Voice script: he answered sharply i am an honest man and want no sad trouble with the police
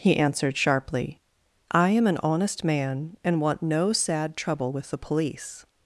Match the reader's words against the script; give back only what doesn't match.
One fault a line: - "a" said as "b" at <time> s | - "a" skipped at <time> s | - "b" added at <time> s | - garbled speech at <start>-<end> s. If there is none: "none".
none